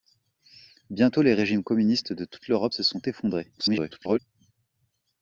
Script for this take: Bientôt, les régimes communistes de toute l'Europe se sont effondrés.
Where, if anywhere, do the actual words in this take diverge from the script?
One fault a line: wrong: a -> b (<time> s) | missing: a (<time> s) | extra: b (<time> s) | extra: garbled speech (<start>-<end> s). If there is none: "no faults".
extra: garbled speech (3.6-4.2 s)